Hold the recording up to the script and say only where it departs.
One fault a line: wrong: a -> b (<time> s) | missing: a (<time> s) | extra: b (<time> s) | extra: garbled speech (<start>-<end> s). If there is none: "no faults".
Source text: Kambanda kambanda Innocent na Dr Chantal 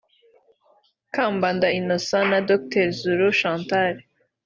missing: kambanda (1.7 s)
extra: Zulu (3.0 s)